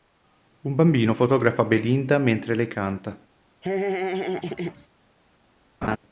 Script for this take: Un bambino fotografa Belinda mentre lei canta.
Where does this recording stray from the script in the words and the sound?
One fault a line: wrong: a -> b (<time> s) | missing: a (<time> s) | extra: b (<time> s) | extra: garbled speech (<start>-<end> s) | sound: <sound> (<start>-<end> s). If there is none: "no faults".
sound: laugh (3.6-4.9 s)
sound: laugh (5.8-6.0 s)